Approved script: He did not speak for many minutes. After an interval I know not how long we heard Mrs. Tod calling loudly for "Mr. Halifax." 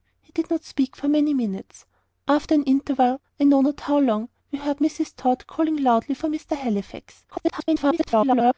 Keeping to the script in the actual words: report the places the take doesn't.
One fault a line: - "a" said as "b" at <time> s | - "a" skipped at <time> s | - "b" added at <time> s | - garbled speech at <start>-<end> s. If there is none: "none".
- garbled speech at 7.3-8.5 s